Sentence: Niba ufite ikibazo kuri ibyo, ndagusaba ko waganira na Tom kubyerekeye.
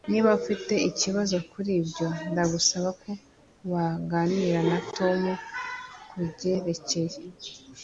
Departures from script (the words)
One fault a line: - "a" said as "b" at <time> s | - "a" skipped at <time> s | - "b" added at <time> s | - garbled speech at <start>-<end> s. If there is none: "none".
none